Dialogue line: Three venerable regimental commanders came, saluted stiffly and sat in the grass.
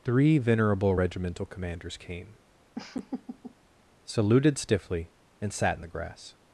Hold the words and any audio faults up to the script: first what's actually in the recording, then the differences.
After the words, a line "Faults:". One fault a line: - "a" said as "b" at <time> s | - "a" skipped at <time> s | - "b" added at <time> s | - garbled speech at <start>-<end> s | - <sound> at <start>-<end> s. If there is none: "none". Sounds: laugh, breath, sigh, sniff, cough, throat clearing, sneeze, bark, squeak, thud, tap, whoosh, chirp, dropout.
Three venerable regimental commanders came, saluted stiffly and sat in the grass.
Faults:
- laugh at 2.7-3.5 s